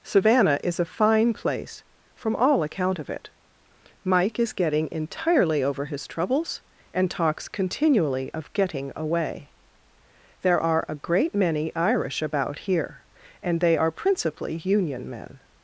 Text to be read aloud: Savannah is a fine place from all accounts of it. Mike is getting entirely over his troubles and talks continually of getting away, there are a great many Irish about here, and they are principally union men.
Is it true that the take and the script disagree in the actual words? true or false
true